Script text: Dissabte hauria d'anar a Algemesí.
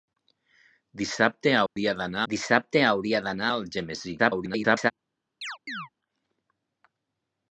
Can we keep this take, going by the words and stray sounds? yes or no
no